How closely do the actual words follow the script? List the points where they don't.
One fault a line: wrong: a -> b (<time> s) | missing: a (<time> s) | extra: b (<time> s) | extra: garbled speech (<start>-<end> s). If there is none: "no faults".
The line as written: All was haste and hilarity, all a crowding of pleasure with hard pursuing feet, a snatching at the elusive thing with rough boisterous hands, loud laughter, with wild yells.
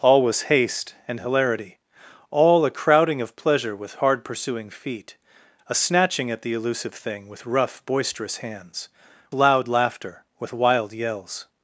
no faults